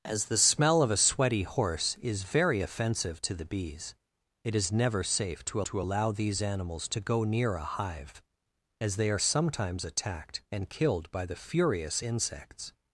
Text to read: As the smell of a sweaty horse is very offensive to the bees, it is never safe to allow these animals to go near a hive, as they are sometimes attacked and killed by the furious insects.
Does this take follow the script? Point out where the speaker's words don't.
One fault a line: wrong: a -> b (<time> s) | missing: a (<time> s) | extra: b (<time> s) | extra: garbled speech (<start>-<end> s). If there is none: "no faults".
extra: to (5.6 s)